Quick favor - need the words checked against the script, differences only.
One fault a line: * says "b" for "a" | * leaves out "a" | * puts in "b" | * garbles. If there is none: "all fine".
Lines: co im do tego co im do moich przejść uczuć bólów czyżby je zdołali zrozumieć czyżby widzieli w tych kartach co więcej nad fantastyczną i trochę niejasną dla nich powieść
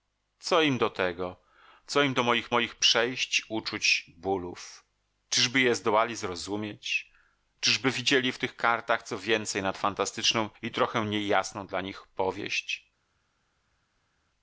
* puts in "moich"